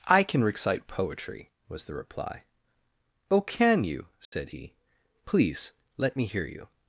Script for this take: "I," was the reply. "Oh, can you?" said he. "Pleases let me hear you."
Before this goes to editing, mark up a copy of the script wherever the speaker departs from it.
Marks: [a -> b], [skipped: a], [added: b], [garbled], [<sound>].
"I," [added: can recite poetry] was the reply. "Oh, can you?" said [dropout] he. ["Pleases -> Please] let me hear you."